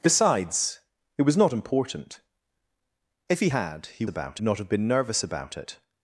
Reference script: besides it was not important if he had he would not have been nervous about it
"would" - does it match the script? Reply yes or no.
no